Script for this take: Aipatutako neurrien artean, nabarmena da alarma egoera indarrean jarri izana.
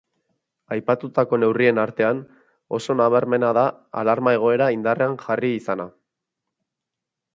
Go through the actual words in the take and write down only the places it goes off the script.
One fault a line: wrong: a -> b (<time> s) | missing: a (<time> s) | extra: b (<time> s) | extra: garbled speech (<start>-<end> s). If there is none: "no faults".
extra: oso (2.8 s)